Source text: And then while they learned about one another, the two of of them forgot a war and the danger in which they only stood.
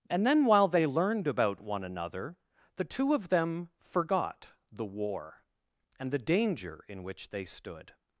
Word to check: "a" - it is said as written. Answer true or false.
false